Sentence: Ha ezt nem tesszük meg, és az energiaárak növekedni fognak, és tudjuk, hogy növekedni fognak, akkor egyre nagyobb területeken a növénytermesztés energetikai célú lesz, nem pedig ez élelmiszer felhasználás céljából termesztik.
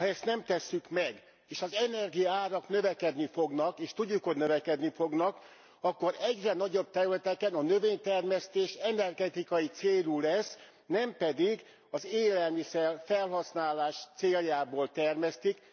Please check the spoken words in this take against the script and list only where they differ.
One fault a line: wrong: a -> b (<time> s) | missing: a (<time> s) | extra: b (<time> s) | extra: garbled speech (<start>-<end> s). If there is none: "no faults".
wrong: ez -> az (11.9 s)